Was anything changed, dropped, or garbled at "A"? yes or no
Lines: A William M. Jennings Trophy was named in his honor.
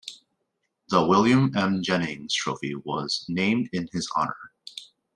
yes